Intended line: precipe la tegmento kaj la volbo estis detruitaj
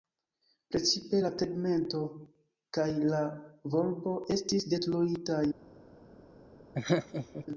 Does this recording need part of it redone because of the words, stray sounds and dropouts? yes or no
yes